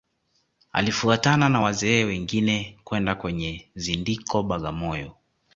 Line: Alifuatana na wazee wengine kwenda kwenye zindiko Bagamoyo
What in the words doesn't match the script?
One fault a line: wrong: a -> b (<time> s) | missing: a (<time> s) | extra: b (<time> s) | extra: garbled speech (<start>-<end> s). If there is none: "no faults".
no faults